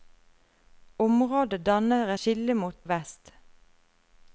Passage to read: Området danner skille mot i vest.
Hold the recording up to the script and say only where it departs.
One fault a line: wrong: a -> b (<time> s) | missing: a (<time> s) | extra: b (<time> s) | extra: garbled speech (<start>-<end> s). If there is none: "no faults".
no faults